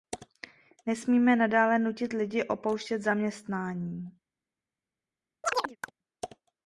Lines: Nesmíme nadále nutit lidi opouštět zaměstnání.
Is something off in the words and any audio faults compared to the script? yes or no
yes